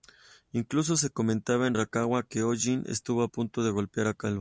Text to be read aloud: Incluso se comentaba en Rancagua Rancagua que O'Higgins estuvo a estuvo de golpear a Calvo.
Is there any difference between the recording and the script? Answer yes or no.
yes